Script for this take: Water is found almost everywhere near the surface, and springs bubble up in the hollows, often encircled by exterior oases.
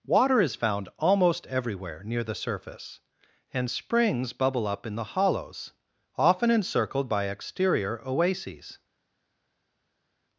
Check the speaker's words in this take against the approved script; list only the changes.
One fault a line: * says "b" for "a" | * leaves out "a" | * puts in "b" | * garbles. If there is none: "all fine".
all fine